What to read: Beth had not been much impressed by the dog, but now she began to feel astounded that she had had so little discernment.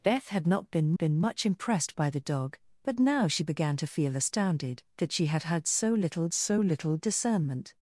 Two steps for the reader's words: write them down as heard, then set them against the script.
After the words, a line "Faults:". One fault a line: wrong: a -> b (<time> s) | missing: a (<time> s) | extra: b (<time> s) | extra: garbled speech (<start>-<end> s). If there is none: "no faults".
Beth had not been been much impressed by the dog, but now she began to feel astounded that she had had so little so little discernment.
Faults:
extra: been (1.0 s)
extra: so little (6.3 s)